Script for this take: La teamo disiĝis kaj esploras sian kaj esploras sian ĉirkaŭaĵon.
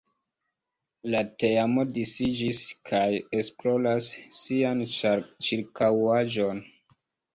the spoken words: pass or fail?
fail